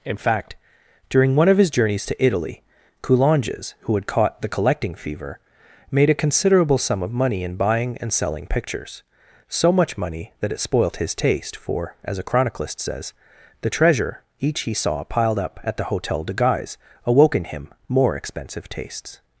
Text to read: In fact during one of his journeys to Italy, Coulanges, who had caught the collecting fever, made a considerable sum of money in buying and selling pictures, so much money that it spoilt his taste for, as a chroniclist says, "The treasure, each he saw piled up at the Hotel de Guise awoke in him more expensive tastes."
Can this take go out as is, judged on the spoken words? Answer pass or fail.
pass